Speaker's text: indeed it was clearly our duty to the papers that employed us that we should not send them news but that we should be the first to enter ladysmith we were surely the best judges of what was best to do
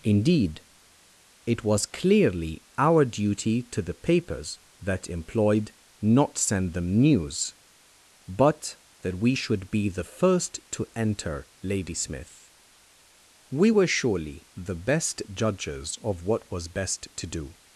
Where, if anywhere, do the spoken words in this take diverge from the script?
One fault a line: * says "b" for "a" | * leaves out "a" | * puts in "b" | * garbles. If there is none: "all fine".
* leaves out "us that we should"